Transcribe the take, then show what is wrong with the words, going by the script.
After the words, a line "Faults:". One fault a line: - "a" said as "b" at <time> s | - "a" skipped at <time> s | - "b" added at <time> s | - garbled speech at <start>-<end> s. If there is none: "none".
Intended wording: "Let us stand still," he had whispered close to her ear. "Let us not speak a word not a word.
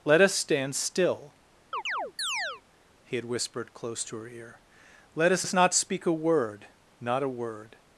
"Let us stand still," he had whispered close to her ear. "Let us us not speak a word not a word.
Faults:
- "us" added at 5.4 s